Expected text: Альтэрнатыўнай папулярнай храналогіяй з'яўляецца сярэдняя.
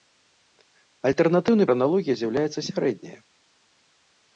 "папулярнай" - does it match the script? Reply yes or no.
no